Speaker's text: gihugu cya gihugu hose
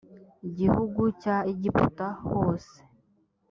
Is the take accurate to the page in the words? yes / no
no